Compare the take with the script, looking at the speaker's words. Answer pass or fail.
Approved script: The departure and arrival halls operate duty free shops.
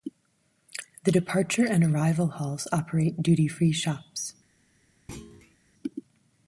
pass